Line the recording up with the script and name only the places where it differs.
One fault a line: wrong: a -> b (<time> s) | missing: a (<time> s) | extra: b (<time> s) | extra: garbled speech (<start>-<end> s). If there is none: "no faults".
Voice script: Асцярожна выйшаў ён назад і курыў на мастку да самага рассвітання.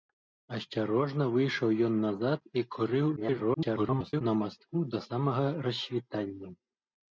extra: garbled speech (3.2-4.2 s)